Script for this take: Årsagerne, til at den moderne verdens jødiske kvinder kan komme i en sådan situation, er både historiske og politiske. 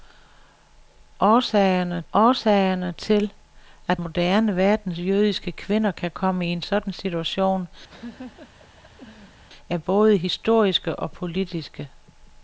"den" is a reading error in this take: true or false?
true